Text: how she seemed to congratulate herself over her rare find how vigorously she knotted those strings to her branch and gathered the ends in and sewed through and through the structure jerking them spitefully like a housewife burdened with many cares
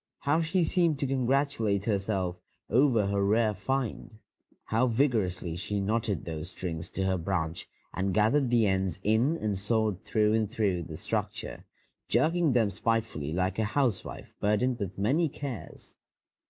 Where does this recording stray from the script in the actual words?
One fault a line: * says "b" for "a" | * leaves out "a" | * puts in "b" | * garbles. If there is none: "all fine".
all fine